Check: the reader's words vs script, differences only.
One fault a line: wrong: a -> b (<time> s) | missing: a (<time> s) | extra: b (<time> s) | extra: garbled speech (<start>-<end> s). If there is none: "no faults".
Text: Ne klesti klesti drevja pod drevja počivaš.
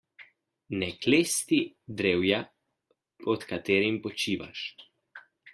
missing: klesti (1.6 s)
wrong: drevja -> katerim (3.5 s)